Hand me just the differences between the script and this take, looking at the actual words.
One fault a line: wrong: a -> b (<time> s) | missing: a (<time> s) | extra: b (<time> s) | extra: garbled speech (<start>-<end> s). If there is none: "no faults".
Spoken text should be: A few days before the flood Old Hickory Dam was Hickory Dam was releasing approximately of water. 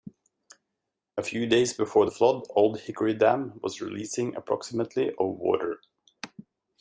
missing: Hickory Dam was (3.8 s)